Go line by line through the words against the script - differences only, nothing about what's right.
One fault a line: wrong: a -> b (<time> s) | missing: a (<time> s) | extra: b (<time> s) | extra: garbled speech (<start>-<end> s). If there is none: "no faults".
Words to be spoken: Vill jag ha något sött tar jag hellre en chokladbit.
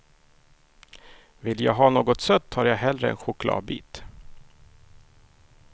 no faults